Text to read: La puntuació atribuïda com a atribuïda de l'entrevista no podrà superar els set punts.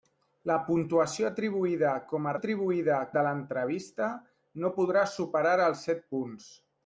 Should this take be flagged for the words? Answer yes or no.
no